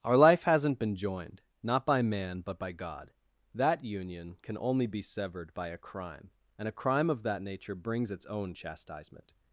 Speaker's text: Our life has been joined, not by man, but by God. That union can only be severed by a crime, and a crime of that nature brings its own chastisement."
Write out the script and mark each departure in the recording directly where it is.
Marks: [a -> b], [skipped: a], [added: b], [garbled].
Our life [has -> hasn't] been joined, not by man, but by God. That union can only be severed by a crime, and a crime of that nature brings its own chastisement."